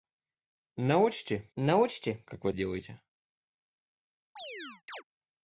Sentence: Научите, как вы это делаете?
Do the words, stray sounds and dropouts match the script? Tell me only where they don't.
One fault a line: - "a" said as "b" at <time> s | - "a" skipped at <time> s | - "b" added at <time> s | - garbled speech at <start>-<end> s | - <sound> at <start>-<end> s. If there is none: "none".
- "научите" added at 1.6 s
- "это" skipped at 2.5 s
- chirp at 4.4-5.0 s